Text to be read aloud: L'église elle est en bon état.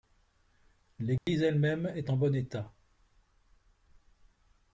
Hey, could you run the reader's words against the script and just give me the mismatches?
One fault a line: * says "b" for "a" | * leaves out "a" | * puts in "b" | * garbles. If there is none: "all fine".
* puts in "même"